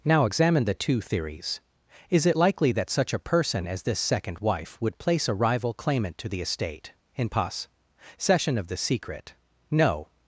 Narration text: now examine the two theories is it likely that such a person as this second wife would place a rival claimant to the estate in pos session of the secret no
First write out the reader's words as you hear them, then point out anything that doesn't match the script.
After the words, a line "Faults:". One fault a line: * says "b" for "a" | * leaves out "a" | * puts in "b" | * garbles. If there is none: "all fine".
now examine the two theories is it likely that such a person as this second wife would place a rival claimant to the estate in pos session of the secret no
Faults:
all fine